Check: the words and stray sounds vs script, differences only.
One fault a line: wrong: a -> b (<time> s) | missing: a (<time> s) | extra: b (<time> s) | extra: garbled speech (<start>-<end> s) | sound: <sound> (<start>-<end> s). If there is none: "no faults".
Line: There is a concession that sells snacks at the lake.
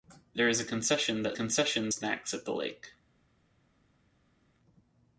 wrong: sells -> concession (1.3 s)